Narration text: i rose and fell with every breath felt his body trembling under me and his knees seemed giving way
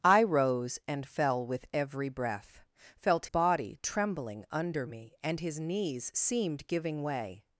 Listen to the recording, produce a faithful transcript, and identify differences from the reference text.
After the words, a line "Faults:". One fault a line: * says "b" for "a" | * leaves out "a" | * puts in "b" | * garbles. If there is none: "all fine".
i rose and fell with every breath felt body trembling under me and his knees seemed giving way
Faults:
* leaves out "his"